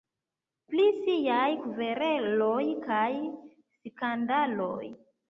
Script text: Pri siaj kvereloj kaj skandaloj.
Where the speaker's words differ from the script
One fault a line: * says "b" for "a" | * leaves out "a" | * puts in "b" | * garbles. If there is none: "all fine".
all fine